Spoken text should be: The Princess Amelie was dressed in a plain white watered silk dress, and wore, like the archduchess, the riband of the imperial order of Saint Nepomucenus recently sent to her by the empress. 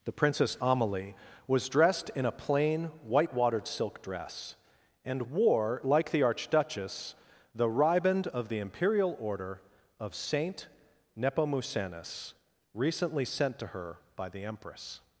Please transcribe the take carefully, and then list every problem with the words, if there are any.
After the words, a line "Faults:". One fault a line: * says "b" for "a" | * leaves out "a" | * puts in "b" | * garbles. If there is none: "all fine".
The Princess Amelie was dressed in a plain white watered silk dress, and wore, like the archduchess, the riband of the imperial order of Saint Nepomucenus recently sent to her by the empress.
Faults:
all fine